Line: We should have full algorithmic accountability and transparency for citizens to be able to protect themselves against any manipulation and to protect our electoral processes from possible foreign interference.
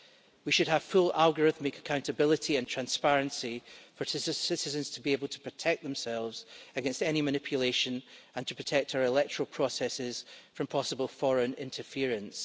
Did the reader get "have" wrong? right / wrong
right